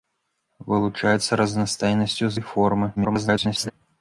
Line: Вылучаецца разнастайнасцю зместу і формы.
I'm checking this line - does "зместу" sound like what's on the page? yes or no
no